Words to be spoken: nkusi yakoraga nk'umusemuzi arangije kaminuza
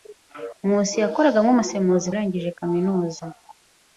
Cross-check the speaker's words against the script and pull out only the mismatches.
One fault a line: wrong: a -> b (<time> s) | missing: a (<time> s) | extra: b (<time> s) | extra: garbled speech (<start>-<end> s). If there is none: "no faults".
no faults